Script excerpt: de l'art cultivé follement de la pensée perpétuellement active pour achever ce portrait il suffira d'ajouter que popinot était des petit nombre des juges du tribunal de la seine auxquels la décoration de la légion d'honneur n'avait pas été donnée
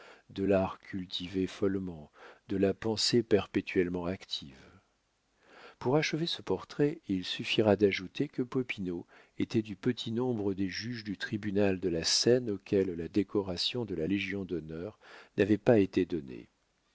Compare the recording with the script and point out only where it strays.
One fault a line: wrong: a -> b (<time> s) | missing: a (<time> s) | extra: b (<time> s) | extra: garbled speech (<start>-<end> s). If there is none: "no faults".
wrong: des -> du (9.6 s)